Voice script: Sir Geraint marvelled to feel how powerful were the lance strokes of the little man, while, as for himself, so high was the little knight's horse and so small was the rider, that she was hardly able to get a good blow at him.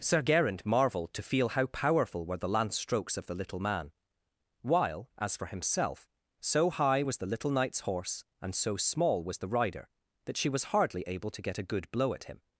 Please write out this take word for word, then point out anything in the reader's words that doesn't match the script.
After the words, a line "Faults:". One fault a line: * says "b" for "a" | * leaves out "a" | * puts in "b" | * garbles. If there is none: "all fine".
Sir Geraint marvelled to feel how powerful were the lance strokes of the little man, while, as for himself, so high was the little knight's horse and so small was the rider, that she was hardly able to get a good blow at him.
Faults:
all fine